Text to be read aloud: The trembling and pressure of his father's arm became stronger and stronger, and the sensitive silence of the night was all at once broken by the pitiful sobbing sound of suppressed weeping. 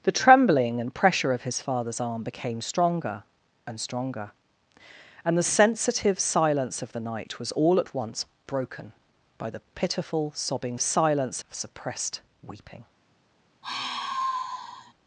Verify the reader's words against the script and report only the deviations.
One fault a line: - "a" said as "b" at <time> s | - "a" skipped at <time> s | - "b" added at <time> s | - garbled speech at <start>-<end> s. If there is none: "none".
- "sound" said as "silence" at 10.8 s